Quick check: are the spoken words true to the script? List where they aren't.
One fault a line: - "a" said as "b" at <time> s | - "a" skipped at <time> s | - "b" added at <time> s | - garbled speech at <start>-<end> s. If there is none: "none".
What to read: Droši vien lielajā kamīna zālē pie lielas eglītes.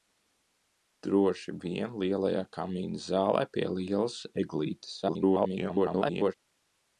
- garbled speech at 5.0-6.3 s